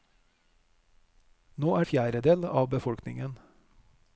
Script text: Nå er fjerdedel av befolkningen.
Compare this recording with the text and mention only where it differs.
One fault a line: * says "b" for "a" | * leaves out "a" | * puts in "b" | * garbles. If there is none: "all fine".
all fine